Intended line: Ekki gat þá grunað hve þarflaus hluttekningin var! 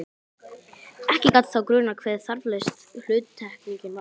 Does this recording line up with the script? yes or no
yes